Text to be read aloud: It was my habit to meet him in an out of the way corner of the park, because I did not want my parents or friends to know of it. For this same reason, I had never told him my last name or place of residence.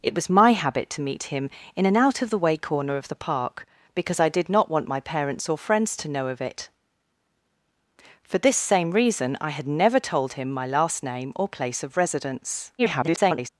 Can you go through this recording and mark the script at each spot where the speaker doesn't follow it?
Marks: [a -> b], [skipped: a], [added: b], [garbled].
It was my habit to meet him in an out of the way corner of the park, because I did not want my parents or friends to know of it. For this same reason, I had never told him my last name or place of residence. [garbled]